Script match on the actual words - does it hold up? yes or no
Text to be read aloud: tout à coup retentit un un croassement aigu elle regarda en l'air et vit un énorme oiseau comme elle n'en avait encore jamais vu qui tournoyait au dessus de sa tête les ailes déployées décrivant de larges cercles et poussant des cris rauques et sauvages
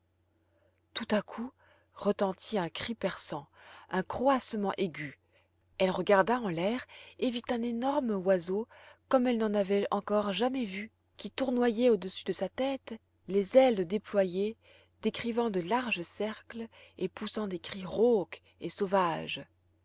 no